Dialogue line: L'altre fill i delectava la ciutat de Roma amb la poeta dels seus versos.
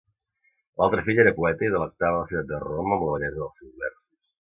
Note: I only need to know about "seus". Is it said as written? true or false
true